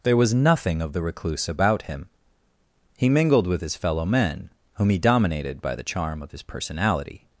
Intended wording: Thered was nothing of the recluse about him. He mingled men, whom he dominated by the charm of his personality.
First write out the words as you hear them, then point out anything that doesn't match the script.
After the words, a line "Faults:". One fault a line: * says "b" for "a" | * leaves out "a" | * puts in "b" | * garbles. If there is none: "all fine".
There was nothing of the recluse about him. He mingled with his fellow men, whom he dominated by the charm of his personality.
Faults:
* says "There" for "Thered"
* puts in "with his fellow"